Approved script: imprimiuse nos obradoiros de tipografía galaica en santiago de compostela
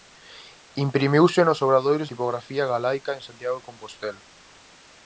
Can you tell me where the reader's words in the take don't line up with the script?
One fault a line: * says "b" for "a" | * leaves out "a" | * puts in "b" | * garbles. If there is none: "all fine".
* leaves out "de"